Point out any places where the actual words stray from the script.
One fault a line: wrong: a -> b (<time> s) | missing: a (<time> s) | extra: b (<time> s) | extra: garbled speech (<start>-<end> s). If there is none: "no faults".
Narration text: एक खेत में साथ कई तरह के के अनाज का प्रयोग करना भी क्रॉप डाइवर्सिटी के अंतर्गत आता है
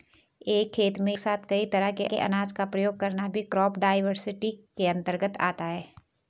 no faults